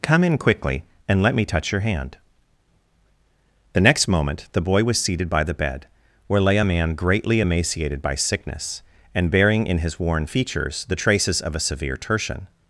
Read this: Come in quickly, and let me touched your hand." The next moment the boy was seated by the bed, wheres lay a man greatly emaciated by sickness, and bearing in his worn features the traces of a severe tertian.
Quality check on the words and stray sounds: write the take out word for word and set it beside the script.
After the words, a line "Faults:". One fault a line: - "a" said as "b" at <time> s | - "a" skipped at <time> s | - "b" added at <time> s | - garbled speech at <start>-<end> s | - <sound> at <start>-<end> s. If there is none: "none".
Come in quickly, and let me touch your hand." The next moment the boy was seated by the bed, where lay a man greatly emaciated by sickness, and bearing in his worn features the traces of a severe tertian.
Faults:
- "touched" said as "touch" at 1.4 s
- "wheres" said as "where" at 6.2 s